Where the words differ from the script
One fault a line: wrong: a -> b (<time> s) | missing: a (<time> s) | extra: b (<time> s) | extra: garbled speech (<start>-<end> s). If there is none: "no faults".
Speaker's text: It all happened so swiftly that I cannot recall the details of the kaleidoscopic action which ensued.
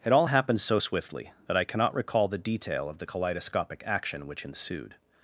wrong: details -> detail (2.4 s)